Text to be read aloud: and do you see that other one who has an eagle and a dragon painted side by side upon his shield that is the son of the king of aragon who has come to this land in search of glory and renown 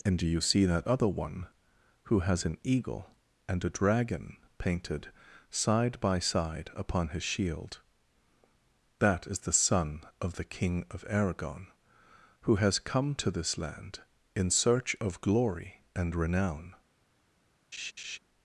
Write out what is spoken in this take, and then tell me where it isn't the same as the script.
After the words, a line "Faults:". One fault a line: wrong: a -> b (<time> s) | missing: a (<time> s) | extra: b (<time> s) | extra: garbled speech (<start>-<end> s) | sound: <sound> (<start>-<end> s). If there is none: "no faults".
and do you see that other one who has an eagle and a dragon painted side by side upon his shield that is the son of the king of aragon who has come to this land in search of glory and renown
Faults:
sound: laugh (17.7-18.2 s)